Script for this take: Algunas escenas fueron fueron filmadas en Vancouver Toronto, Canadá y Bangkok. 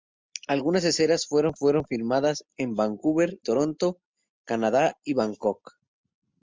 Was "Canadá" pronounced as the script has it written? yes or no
yes